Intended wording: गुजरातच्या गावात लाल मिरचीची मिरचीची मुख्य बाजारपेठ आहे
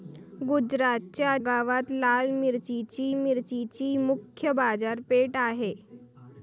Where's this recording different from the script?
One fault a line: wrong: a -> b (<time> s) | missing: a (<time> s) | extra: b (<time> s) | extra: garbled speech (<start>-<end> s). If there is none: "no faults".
no faults